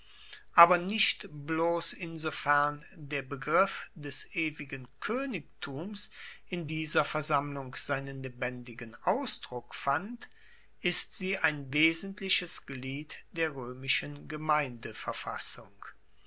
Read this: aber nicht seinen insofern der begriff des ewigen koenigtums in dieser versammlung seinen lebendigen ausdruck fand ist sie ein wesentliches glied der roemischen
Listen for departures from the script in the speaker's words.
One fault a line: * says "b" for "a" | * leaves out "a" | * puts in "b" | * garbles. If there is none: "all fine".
* says "bloss" for "seinen"